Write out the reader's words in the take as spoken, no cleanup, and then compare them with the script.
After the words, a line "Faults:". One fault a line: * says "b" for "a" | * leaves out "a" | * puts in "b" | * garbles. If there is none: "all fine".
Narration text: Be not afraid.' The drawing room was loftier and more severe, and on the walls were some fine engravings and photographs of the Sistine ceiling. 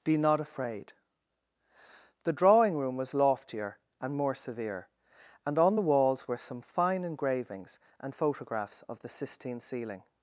Be not afraid.' The drawing room was loftier and more severe, and on the walls were some fine engravings and photographs of the Sistine ceiling.
Faults:
all fine